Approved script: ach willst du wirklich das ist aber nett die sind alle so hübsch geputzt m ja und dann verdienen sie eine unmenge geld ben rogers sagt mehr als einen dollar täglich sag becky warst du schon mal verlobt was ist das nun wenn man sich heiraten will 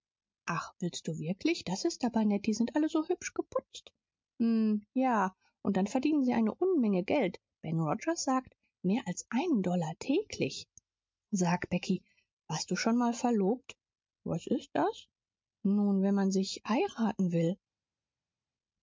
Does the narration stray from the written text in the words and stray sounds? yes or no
no